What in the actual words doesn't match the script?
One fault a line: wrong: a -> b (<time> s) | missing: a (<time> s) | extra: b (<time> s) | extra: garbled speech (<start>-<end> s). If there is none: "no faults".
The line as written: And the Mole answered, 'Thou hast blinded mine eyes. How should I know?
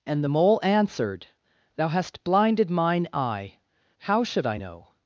wrong: eyes -> eye (3.1 s)